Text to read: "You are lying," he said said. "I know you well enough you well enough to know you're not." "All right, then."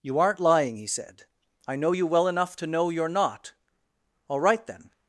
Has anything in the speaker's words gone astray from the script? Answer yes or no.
yes